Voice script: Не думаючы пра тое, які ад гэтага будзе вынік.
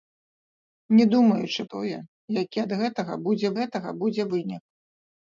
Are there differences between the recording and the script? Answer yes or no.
yes